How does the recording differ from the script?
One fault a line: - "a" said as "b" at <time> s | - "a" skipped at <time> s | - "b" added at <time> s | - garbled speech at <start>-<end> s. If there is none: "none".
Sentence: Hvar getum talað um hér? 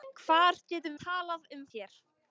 none